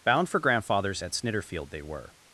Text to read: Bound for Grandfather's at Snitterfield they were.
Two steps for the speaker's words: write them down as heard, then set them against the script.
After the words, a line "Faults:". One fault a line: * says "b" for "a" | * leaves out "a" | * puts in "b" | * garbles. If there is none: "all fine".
Bound for Grandfather's at Snitterfield they were.
Faults:
all fine